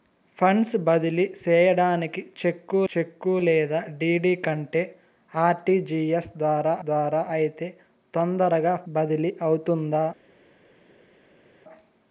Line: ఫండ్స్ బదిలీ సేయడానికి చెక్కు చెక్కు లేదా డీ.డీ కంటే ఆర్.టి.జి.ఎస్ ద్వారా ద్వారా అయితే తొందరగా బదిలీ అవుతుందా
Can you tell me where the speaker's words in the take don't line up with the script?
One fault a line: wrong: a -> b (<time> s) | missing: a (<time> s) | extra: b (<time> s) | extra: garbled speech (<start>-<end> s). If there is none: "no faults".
no faults